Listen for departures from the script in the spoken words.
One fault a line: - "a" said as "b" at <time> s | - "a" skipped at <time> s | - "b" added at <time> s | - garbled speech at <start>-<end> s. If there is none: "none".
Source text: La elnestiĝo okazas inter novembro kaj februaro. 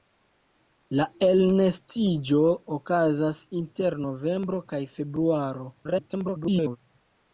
- garbled speech at 5.8-6.8 s